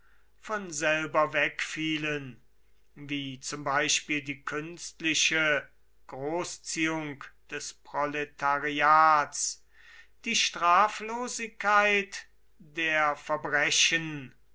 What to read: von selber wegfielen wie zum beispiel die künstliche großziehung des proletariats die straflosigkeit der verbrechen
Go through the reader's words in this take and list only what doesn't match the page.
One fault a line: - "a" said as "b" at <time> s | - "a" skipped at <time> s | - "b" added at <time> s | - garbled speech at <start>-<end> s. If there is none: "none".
none